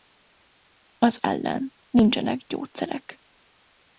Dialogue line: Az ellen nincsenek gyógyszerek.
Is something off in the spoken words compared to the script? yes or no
no